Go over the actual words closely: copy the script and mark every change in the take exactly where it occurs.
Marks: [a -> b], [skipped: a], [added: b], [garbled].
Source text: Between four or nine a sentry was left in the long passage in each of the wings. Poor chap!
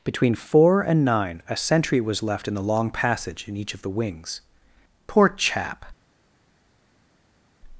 Between four [or -> and] nine a sentry was left in the long passage in each of the wings. Poor chap!